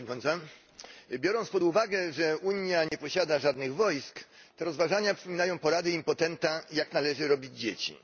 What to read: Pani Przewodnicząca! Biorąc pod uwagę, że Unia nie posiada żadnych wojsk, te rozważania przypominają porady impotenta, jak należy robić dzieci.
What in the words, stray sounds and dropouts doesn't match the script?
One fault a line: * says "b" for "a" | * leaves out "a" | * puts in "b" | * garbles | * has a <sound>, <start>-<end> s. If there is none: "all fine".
* has a dropout, 2.9-2.9 s